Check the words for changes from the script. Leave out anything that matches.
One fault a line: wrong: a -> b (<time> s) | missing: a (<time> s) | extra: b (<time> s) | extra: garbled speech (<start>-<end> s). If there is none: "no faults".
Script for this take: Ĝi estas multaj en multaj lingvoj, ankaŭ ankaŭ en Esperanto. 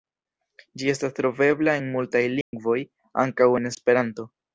wrong: multaj -> trovebla (1.2 s)
missing: ankaŭ (3.5 s)